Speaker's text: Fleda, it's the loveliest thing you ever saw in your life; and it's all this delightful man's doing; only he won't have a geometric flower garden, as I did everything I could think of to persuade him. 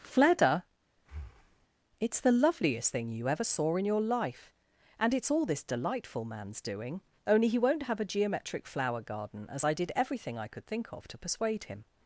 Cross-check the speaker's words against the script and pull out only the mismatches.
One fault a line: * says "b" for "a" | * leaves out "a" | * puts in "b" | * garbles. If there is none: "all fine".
all fine